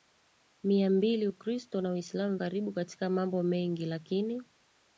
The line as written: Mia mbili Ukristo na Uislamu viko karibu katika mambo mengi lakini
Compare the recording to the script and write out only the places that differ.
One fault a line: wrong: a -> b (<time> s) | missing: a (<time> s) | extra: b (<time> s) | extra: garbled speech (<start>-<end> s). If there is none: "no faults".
missing: viko (2.4 s)